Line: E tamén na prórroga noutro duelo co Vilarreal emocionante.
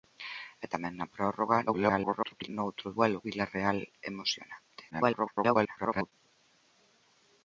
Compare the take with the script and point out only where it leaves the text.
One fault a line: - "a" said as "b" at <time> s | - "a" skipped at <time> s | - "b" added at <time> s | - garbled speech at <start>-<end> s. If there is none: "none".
- garbled speech at 1.7-2.5 s
- "co" skipped at 3.2 s
- garbled speech at 4.9-6.1 s